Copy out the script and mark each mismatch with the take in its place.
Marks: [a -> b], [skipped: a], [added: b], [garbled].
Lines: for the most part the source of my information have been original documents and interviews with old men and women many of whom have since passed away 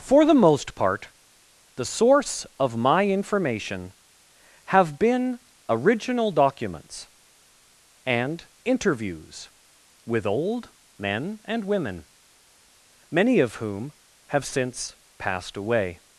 for the most part the source of my information have been original documents and interviews with old men and women many of whom have since passed away